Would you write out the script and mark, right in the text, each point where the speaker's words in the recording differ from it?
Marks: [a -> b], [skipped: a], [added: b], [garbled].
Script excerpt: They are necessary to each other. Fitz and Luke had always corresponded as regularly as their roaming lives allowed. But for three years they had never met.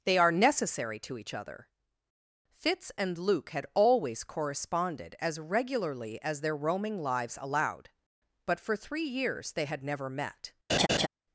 They are necessary to each other. Fitz and Luke had always corresponded as regularly as their roaming lives allowed. But for three years they had never met.